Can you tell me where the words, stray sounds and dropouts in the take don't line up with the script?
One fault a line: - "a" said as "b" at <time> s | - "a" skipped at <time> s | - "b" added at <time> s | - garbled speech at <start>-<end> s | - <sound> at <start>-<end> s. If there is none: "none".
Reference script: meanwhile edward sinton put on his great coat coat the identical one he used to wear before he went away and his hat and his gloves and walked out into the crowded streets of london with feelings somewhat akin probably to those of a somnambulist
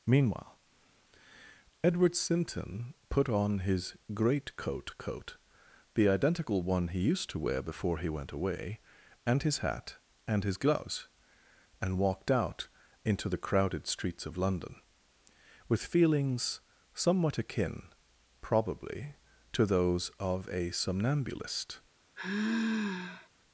- sigh at 22.2-23.3 s